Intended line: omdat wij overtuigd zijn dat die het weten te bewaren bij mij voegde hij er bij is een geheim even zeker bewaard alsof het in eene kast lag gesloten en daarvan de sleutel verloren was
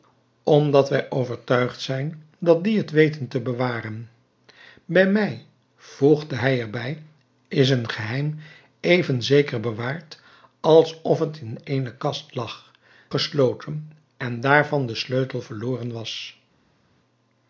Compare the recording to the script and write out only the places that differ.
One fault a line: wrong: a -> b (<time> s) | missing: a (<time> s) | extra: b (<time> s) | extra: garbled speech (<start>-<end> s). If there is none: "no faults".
no faults